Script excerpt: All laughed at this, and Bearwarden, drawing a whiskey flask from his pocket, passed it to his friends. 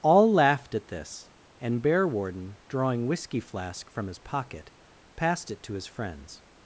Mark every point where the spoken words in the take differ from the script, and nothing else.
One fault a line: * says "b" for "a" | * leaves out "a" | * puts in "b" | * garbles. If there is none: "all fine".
* leaves out "a"